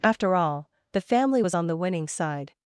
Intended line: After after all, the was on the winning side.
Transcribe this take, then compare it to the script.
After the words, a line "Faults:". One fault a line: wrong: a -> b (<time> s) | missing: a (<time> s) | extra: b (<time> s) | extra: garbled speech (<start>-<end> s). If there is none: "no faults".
After all, the family was on the winning side.
Faults:
missing: after (0.3 s)
extra: family (1.0 s)